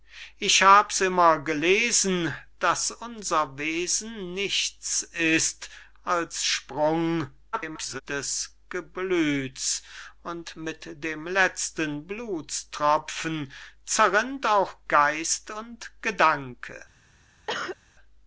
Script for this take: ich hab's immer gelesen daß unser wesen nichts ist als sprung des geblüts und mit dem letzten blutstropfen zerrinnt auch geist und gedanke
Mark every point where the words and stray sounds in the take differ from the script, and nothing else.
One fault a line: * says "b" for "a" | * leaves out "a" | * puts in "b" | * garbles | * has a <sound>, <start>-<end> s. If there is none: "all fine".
* garbles
* has a cough, 17.5-17.8 s